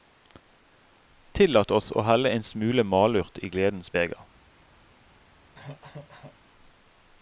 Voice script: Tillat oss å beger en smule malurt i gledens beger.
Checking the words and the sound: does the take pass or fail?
fail